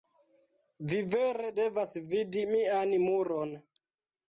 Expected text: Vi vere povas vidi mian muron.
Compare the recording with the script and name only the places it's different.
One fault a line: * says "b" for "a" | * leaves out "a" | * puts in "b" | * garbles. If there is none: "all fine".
* says "devas" for "povas"